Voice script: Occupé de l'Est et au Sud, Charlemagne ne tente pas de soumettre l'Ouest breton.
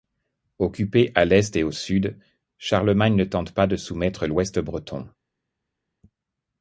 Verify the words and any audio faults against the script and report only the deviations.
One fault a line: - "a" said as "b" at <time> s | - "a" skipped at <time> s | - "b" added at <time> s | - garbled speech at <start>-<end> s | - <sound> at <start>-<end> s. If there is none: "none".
- "de" said as "à" at 1.1 s